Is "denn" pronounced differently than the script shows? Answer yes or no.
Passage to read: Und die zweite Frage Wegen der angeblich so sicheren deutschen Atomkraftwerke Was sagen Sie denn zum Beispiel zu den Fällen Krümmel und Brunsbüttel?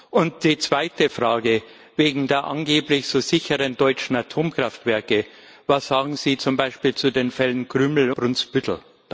yes